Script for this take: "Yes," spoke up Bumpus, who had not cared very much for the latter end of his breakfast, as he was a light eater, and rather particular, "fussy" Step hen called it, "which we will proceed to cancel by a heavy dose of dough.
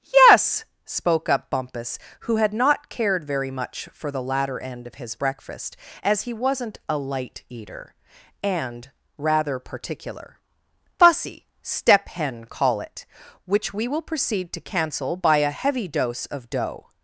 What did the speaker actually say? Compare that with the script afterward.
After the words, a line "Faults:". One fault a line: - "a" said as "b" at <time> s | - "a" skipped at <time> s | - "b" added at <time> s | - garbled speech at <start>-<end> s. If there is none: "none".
"Yes," spoke up Bumpus, who had not cared very much for the latter end of his breakfast, as he wasn't a light eater, and rather particular, "fussy" Step hen call it, "which we will proceed to cancel by a heavy dose of dough.
Faults:
- "was" said as "wasn't" at 6.3 s
- "called" said as "call" at 12.4 s